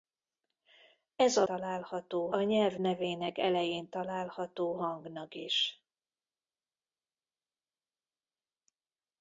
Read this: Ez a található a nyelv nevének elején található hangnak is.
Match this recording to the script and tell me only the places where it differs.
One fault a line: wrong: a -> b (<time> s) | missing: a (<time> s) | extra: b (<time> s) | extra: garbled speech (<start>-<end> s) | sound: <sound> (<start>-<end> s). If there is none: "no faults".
no faults